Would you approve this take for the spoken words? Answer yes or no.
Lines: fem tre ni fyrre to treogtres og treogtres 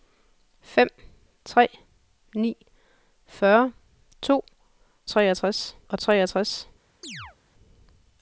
yes